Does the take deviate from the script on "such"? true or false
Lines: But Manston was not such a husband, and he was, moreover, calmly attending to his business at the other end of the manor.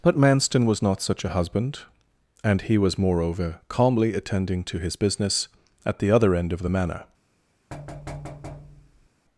false